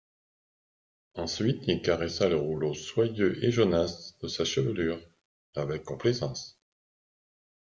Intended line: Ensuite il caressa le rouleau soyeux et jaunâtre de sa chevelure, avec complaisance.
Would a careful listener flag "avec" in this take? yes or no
no